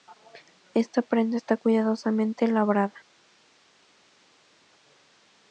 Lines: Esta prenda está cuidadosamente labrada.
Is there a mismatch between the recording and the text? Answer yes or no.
no